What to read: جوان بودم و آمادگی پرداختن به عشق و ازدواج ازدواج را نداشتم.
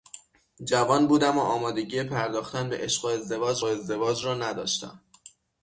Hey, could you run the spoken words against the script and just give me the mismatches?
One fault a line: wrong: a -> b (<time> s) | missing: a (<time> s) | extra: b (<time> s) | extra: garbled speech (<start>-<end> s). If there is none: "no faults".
no faults